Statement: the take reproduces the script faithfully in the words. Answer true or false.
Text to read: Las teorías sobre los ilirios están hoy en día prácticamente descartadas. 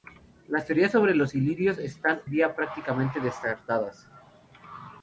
false